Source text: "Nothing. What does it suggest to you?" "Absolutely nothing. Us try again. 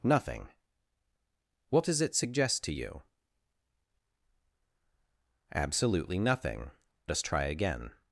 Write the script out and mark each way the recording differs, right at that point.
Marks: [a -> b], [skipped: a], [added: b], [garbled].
"Nothing. What does it suggest to you?" "Absolutely nothing. Us try again.